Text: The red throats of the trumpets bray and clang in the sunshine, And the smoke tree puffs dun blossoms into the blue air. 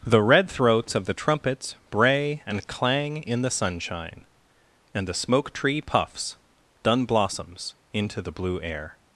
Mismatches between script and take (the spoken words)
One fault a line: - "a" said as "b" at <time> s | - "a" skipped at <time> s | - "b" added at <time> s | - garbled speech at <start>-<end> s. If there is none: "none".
none